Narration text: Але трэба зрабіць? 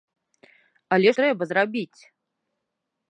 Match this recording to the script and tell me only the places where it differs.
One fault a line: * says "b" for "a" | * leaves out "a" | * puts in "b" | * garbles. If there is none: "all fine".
all fine